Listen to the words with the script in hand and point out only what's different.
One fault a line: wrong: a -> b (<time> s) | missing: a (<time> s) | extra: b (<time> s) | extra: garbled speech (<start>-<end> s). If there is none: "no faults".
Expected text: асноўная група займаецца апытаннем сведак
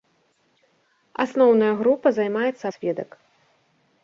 missing: апытаннем (2.6 s)